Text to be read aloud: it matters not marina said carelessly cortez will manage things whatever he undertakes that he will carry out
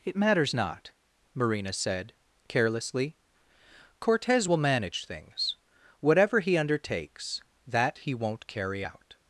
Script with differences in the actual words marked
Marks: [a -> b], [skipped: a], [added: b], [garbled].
it matters not marina said carelessly cortez will manage things whatever he undertakes that he [will -> won't] carry out